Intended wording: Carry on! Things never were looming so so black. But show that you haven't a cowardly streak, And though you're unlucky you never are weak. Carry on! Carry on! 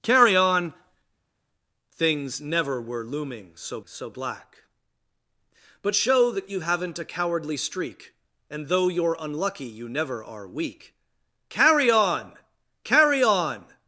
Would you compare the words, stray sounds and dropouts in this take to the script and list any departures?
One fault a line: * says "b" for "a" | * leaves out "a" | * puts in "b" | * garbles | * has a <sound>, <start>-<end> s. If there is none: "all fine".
all fine